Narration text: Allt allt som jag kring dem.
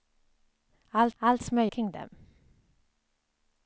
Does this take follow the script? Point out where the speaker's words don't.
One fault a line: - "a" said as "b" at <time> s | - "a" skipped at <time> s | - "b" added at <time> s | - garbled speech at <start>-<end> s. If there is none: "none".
none